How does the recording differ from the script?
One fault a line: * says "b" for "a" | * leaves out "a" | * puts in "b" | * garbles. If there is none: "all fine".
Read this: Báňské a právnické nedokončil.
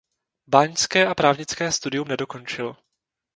* puts in "studium"